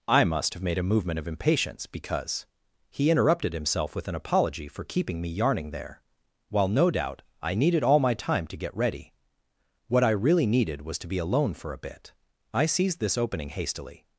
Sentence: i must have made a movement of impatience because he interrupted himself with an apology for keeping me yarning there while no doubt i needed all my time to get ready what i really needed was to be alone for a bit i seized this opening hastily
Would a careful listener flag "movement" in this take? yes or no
no